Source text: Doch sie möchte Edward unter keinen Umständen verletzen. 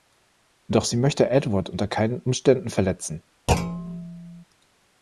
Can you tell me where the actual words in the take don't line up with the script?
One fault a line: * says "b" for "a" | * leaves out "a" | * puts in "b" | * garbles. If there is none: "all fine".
all fine